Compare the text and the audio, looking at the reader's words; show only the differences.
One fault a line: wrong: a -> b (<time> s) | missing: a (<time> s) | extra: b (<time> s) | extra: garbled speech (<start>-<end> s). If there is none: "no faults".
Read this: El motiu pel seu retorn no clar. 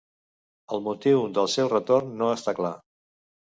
wrong: pel -> del (1.4 s)
extra: està (2.4 s)